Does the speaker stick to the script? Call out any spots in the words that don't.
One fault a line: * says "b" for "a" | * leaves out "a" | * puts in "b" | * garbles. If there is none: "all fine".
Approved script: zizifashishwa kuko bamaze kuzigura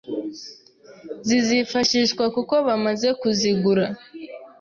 all fine